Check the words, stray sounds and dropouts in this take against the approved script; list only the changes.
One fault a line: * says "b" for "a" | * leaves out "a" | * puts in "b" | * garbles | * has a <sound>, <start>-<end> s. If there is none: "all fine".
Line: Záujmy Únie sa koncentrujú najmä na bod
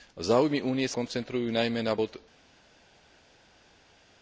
* leaves out "sa"